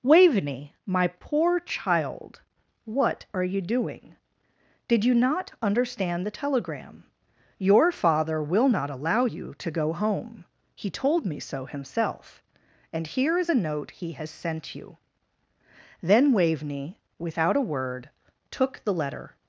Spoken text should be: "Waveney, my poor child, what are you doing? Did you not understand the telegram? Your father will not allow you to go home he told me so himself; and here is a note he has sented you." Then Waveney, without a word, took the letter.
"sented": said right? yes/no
no